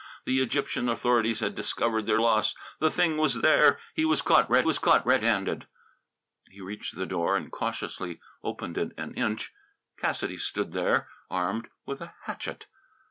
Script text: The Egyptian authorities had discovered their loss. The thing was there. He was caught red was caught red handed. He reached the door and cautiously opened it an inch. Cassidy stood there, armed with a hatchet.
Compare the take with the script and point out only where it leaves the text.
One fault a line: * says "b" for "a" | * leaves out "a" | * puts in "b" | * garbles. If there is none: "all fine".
all fine